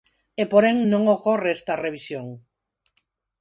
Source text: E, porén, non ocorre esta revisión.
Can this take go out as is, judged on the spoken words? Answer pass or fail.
pass